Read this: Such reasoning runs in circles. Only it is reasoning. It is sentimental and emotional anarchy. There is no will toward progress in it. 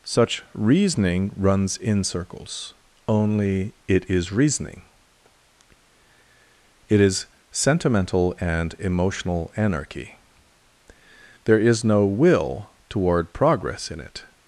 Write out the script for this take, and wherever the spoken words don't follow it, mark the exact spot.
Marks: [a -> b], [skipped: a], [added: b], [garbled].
Such reasoning runs in circles. Only it is reasoning. It is sentimental and emotional anarchy. There is no will toward progress in it.